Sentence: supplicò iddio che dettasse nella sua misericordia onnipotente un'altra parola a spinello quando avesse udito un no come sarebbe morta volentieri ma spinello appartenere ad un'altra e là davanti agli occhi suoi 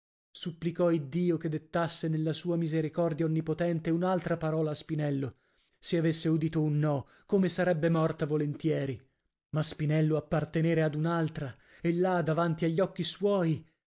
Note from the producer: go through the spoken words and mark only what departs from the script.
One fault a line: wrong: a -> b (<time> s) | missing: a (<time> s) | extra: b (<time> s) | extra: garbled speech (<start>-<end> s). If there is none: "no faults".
wrong: quando -> se (5.8 s)